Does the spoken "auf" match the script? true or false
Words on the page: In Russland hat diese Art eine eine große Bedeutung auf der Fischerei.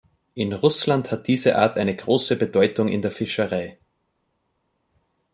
false